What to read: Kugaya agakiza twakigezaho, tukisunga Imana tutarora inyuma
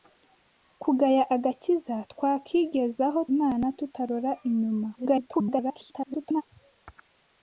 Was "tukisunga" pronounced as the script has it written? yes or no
no